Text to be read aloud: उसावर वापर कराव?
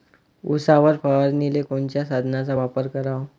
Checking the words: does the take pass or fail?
fail